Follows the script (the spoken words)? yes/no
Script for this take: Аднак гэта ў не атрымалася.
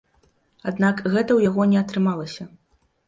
no